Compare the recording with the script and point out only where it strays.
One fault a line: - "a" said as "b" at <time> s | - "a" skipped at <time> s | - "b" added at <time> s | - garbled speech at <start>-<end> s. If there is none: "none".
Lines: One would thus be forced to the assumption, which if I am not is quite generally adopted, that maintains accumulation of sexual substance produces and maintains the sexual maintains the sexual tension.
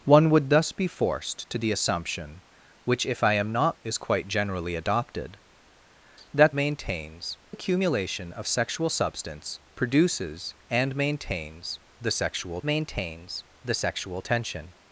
none